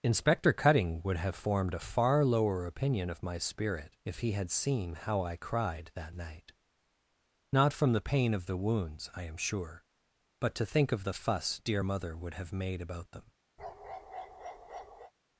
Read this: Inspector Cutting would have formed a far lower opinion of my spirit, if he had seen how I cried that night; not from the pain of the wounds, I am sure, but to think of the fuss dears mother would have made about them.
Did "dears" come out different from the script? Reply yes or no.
yes